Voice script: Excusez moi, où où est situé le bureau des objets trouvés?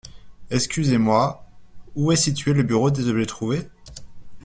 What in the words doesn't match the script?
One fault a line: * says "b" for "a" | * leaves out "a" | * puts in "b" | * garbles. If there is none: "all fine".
* leaves out "où"